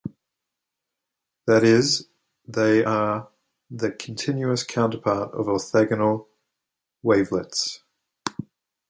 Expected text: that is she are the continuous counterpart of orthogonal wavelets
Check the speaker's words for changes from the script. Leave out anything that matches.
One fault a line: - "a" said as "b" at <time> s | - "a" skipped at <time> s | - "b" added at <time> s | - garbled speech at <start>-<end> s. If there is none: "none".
- "she" said as "they" at 2.5 s